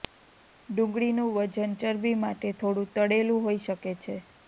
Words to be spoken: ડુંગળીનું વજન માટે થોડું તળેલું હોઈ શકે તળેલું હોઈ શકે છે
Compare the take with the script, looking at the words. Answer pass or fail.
fail